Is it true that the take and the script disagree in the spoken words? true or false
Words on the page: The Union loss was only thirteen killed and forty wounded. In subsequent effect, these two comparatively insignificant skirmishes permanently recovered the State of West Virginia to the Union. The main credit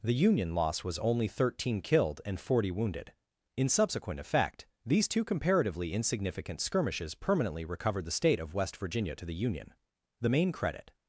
false